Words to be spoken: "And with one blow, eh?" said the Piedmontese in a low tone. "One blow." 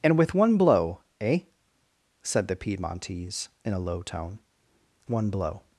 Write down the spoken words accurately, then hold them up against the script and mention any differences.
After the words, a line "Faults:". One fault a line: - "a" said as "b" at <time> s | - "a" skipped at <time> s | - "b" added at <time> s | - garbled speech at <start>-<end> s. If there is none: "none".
"And with one blow, eh?" said the Piedmontese in a low tone. "One blow."
Faults:
none